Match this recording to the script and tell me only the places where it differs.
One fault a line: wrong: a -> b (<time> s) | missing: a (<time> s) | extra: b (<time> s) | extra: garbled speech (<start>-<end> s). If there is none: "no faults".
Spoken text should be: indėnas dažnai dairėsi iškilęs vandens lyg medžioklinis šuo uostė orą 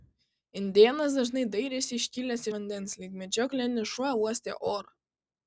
no faults